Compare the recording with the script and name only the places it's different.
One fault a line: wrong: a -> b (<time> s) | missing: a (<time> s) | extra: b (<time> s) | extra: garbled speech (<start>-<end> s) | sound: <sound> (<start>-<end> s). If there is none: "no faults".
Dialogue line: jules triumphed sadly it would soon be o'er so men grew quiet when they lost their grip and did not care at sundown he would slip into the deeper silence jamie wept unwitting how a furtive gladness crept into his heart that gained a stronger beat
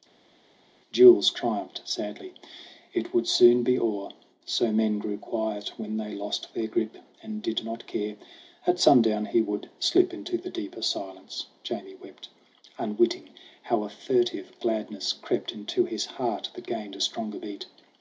no faults